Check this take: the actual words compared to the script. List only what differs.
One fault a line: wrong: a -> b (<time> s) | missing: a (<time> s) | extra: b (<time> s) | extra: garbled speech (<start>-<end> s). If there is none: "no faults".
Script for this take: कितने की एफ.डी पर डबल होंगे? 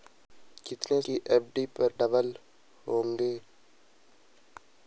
no faults